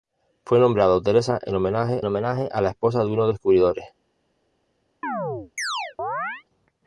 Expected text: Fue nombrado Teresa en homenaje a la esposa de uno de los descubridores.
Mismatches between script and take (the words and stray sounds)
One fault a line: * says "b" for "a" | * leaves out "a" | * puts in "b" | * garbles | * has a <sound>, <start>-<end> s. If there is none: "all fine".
* puts in "homenaje"
* leaves out "los"
* has a chirp, 5.0-6.4 s